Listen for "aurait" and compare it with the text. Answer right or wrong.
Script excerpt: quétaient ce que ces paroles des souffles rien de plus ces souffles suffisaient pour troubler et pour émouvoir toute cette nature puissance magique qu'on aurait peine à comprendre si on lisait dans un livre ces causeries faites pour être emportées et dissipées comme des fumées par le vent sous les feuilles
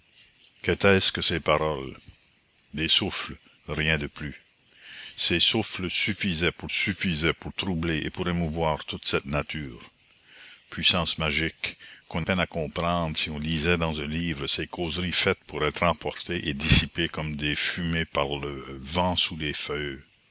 wrong